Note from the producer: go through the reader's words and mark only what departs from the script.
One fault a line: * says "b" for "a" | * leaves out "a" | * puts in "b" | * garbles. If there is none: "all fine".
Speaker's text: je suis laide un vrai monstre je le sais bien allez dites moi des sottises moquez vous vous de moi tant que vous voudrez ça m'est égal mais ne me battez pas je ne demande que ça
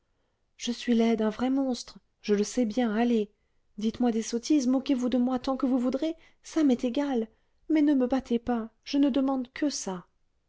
* leaves out "vous"